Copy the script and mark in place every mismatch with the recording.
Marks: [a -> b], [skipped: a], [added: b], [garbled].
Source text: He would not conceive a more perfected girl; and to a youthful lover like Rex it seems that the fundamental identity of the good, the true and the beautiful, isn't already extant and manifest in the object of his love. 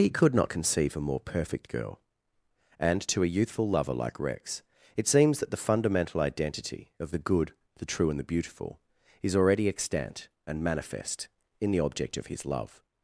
He [would -> could] not conceive a more [perfected -> perfect] girl; and to a youthful lover like Rex it seems that the fundamental identity of the good, the true and the beautiful, [isn't -> is] already extant and manifest in the object of his love.